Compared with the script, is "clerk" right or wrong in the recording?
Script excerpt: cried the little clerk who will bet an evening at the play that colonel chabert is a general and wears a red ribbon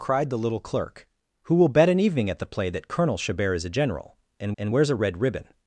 right